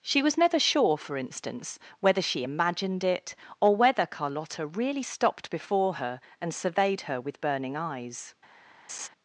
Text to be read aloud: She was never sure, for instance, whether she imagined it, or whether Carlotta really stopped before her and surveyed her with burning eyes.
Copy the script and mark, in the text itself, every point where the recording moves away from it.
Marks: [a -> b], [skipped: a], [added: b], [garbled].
She was never sure, for instance, whether she imagined it, or whether Carlotta really stopped before her and surveyed her with burning eyes.